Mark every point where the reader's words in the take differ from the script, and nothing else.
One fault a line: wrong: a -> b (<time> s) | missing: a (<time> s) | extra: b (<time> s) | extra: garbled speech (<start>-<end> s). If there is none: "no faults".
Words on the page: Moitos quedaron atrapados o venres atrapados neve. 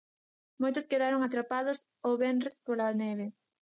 wrong: atrapados -> pola (2.7 s)